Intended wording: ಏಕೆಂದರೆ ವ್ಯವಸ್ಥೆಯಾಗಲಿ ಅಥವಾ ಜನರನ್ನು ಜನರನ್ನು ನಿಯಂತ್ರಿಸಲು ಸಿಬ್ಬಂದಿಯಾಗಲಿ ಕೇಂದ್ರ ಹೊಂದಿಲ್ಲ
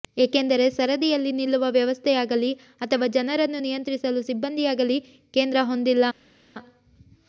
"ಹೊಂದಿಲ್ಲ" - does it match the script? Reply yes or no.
yes